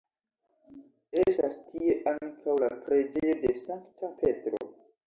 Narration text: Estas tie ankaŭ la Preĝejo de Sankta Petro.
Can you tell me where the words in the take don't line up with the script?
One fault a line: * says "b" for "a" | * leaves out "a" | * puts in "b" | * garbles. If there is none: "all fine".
all fine